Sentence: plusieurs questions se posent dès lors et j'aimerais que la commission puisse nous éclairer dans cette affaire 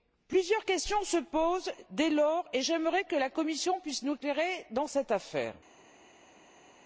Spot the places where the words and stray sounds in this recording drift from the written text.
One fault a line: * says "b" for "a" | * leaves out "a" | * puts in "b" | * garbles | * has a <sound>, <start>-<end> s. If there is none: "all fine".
all fine